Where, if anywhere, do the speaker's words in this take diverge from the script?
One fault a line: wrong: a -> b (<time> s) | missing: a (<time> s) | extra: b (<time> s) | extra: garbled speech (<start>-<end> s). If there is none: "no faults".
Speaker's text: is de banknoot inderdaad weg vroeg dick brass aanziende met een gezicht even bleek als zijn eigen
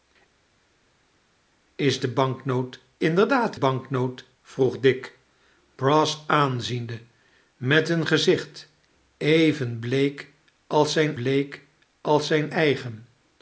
wrong: weg -> banknoot (3.5 s)
extra: bleek als zijn (11.1 s)